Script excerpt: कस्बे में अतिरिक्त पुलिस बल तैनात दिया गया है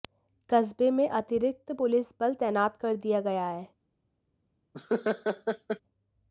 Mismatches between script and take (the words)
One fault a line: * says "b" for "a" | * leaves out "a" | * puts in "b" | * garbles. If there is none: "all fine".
* puts in "कर"